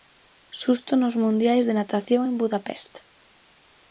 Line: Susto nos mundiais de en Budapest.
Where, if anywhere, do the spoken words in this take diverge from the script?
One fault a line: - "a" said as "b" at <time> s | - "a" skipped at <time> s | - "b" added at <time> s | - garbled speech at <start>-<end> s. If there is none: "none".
- "natación" added at 1.8 s